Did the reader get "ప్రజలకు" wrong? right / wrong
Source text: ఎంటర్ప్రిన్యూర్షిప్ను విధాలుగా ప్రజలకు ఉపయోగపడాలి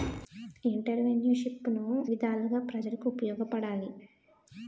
right